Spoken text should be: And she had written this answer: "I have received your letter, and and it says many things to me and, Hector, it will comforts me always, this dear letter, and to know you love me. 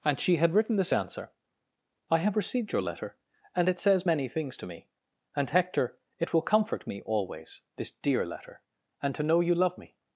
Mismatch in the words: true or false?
true